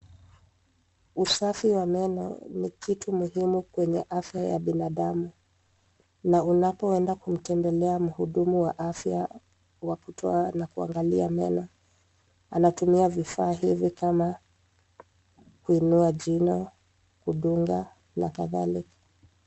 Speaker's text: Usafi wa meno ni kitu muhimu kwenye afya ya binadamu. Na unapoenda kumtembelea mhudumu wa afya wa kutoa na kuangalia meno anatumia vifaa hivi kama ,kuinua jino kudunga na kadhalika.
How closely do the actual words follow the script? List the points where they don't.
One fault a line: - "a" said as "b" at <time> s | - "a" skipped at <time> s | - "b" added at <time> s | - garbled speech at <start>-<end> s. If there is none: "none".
none